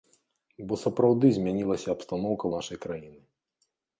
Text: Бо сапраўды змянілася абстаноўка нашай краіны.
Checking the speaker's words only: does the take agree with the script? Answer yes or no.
yes